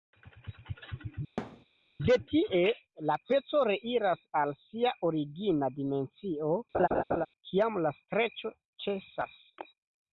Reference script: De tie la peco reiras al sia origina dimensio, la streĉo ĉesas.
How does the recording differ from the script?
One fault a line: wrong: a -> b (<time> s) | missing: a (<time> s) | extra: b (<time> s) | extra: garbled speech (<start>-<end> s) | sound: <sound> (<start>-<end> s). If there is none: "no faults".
sound: thud (1.4-1.7 s)
sound: laugh (6.7-7.3 s)
extra: kiam (7.5 s)